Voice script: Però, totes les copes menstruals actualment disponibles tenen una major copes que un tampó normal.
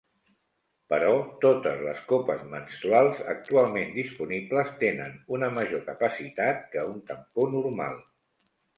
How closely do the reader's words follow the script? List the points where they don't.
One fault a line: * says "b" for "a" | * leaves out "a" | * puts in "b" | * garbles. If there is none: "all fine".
* says "capacitat" for "copes"